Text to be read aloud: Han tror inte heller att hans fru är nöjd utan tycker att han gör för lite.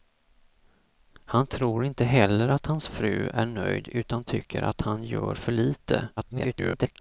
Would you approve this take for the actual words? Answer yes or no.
no